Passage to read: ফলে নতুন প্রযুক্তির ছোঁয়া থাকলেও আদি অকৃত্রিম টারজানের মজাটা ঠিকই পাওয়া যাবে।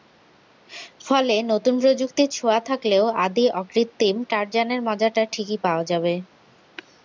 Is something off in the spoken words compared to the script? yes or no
no